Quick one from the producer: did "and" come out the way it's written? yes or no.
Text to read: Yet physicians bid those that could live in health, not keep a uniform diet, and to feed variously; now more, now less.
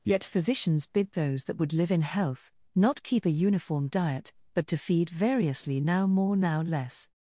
no